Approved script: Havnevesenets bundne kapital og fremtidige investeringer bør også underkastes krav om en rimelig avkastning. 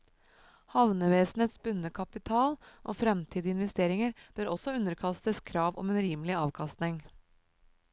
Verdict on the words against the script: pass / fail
pass